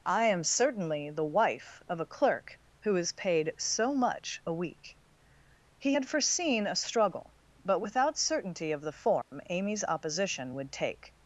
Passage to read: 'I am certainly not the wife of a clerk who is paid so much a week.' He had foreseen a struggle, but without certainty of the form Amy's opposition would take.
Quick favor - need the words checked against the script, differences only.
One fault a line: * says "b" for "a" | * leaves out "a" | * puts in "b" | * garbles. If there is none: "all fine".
* leaves out "not"